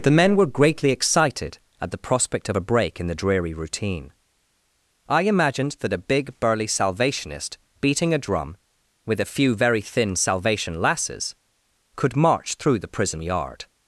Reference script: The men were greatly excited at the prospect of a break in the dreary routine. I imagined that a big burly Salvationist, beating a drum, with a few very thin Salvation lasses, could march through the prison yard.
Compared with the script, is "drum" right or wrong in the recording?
right